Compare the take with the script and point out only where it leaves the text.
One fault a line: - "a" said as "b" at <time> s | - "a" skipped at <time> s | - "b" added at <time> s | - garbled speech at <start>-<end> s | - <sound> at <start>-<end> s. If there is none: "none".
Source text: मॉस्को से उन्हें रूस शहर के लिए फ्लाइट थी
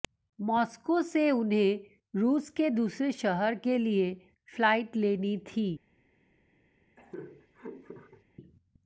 - "के दूसरे" added at 2.5 s
- "लेनी" added at 5.0 s
- laugh at 7.0-8.2 s